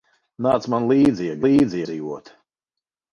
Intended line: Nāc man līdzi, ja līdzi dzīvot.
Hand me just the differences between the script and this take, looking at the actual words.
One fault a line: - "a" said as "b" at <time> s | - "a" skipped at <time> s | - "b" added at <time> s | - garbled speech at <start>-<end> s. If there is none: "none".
none